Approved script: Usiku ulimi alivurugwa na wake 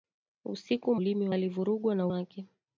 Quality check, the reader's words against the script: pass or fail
pass